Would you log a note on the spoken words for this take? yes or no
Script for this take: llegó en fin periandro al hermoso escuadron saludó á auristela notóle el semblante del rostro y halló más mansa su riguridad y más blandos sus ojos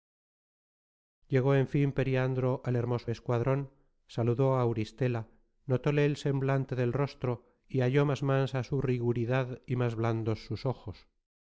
no